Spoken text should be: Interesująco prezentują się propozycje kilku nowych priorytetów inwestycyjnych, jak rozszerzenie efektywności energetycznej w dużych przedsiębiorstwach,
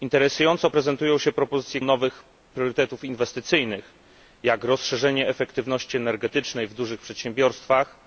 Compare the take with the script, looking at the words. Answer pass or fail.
fail